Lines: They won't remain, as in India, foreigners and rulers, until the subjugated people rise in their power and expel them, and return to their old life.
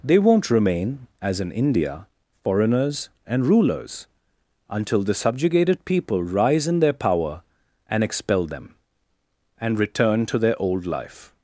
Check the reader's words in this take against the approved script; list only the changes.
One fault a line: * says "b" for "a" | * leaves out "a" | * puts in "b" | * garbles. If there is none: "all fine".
all fine